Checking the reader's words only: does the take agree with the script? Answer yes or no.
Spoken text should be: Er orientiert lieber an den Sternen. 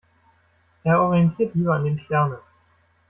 yes